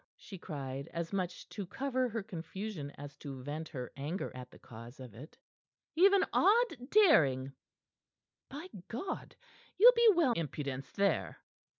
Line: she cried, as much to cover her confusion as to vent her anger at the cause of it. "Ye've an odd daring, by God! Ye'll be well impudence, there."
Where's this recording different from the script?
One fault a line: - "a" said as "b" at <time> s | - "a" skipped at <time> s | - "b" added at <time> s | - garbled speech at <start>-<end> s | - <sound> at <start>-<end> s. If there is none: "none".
none